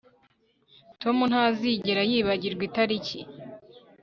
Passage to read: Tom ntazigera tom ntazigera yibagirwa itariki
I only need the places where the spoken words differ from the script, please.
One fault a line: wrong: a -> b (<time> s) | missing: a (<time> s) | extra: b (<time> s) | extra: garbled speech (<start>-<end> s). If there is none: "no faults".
missing: tom ntazigera (2.0 s)